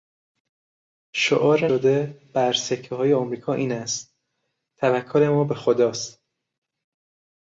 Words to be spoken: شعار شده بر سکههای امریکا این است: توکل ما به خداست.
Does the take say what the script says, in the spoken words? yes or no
yes